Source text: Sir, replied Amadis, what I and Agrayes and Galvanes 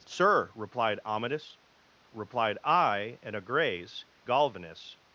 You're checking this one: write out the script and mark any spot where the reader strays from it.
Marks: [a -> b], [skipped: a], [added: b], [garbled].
Sir, replied Amadis, [what -> replied] I and Agrayes [skipped: and] Galvanes